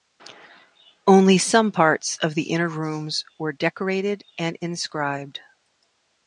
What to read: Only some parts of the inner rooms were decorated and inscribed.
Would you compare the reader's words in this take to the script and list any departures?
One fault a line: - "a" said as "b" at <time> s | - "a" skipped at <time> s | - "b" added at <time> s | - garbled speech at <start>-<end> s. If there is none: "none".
none